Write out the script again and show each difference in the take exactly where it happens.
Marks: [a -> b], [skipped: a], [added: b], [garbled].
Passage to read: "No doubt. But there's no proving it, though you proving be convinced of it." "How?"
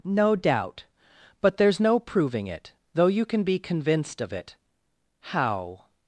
"No doubt. But there's no proving it, though you [proving -> can] be convinced of it." "How?"